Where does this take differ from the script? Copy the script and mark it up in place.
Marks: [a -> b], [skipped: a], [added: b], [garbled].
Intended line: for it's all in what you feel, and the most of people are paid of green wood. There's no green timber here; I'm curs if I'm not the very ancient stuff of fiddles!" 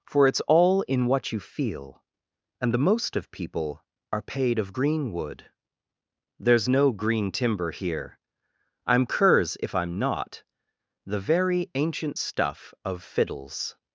for it's all in what you feel, and the most of people are paid of green wood. There's no green timber here; I'm curs if I'm not the very ancient stuff of fiddles!"